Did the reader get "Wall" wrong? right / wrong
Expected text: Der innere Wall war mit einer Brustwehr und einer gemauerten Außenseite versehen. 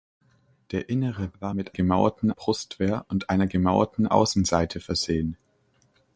wrong